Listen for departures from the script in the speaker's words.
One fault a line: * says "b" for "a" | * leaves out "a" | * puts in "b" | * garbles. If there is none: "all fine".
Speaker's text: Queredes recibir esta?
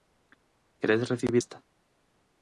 all fine